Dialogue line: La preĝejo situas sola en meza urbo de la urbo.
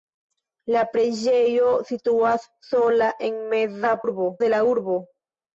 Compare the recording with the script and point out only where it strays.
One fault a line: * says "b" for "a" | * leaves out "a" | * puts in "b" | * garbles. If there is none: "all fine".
all fine